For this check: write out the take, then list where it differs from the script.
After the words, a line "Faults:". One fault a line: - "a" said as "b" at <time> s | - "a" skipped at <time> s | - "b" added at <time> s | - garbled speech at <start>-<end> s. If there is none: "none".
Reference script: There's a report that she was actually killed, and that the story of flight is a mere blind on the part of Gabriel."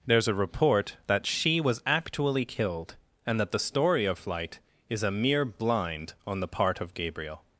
There's a report that she was actually killed, and that the story of flight is a mere blind on the part of Gabriel."
Faults:
none